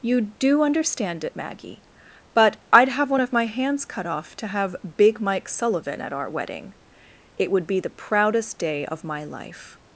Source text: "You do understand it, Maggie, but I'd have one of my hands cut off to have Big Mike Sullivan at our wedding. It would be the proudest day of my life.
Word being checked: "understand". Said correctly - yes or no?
yes